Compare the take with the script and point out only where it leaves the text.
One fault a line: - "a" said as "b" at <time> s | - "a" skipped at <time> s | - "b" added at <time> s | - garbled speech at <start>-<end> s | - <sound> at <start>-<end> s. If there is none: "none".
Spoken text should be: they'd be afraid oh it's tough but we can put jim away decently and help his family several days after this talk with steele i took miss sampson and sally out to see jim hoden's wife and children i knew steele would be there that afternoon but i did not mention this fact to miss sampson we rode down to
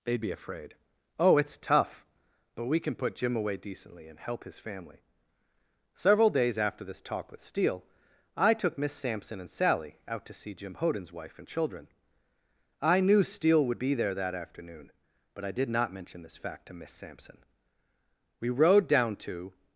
none